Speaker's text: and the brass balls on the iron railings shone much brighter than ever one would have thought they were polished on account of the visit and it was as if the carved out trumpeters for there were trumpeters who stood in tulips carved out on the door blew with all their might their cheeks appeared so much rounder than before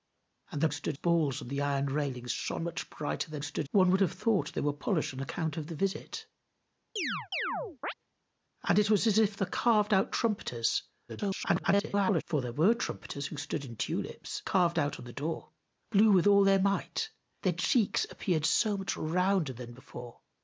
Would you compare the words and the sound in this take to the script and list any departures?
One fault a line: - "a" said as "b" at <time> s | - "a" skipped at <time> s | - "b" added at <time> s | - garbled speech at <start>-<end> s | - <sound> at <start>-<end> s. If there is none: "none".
- "brass" said as "stood" at 0.7 s
- "ever" said as "stood" at 3.4 s
- chirp at 7.0-7.9 s
- garbled speech at 11.1-12.2 s